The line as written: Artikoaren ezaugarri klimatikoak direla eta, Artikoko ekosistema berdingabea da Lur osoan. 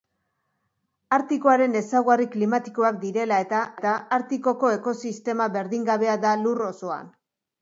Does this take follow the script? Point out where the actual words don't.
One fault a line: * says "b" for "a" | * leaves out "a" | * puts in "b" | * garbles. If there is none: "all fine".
* puts in "eta"